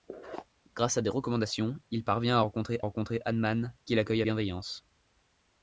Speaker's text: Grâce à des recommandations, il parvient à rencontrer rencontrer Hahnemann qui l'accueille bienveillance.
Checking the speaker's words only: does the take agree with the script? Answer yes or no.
yes